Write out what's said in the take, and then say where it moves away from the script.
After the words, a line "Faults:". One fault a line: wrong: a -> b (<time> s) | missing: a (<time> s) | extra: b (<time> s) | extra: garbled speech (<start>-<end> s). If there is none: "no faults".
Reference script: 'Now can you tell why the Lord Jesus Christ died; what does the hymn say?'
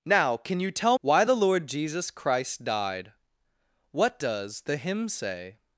'Now can you tell why the Lord Jesus Christ died; what does the hymn say?'
Faults:
no faults